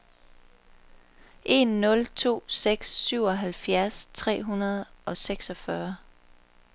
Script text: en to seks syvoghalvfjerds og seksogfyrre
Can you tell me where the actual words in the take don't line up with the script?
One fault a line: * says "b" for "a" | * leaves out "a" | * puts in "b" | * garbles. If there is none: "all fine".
* puts in "nul"
* puts in "tre hundrede"